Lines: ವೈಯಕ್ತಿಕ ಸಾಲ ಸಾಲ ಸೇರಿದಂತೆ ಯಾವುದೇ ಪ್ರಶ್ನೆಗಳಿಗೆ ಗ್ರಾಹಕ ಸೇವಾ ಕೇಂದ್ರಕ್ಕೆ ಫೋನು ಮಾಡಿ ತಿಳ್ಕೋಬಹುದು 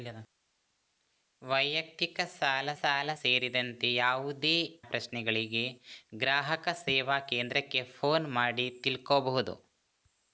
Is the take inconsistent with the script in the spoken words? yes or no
no